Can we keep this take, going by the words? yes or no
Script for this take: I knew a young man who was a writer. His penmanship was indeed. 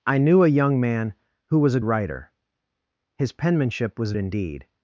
yes